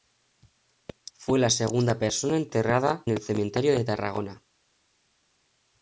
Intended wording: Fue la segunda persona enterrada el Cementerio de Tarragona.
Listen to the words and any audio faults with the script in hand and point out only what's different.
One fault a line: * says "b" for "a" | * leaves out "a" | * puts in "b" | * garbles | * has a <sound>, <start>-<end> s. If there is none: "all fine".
all fine